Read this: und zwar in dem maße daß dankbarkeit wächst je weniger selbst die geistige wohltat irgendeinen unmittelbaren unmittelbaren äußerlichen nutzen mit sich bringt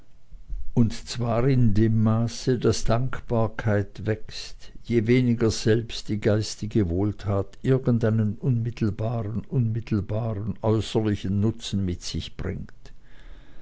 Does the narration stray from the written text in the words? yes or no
no